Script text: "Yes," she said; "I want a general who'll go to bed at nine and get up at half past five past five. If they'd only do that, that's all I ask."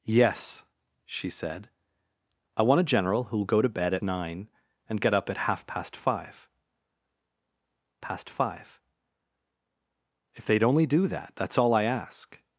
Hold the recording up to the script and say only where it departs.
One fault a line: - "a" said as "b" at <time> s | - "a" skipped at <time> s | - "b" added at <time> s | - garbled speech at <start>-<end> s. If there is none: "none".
none